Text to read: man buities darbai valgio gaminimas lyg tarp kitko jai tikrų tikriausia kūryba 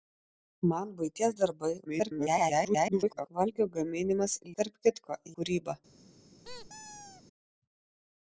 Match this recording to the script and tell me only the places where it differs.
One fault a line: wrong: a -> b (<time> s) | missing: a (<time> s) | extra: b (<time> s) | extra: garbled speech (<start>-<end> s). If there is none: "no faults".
extra: garbled speech (1.9-3.3 s)
missing: lyg (4.3 s)
missing: jai tikrų tikriausia (5.2 s)